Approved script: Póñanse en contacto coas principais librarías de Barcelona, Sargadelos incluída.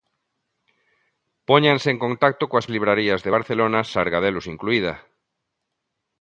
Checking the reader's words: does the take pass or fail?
fail